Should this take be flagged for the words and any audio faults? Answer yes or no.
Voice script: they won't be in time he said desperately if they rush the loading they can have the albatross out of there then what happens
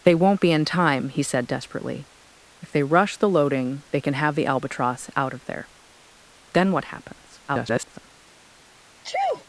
yes